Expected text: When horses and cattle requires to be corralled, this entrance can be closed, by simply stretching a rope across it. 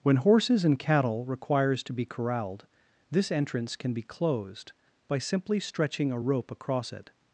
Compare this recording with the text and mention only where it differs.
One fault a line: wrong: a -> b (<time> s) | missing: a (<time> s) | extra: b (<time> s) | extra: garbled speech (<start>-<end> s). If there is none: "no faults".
no faults